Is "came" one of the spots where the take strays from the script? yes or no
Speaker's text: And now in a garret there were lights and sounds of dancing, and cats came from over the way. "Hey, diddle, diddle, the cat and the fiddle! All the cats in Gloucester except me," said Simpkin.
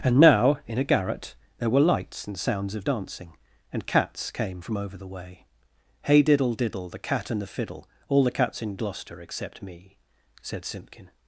no